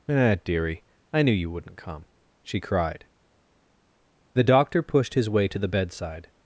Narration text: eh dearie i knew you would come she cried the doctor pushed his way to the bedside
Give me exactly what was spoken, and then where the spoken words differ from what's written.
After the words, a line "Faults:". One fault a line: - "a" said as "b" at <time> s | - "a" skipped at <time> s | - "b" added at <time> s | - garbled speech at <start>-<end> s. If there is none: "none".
eh dearie i knew you wouldn't come she cried the doctor pushed his way to the bedside
Faults:
- "would" said as "wouldn't" at 1.5 s